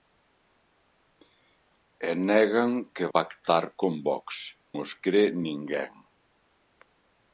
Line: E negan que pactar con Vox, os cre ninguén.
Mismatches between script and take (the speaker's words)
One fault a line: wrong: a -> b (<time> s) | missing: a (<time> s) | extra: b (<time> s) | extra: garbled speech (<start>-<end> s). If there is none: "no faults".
no faults